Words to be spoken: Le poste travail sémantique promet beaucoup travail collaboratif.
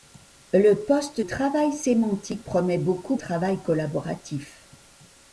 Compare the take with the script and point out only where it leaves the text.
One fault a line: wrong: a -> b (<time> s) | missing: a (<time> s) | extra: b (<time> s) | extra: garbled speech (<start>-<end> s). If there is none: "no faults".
no faults